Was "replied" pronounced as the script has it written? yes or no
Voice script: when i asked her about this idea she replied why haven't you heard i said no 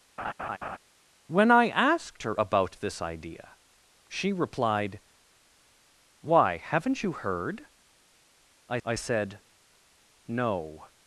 yes